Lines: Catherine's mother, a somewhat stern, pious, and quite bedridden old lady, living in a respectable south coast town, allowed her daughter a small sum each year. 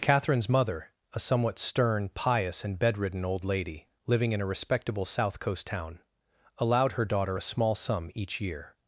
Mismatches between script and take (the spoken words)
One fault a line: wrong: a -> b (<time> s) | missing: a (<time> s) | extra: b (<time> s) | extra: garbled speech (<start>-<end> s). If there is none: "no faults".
missing: quite (2.8 s)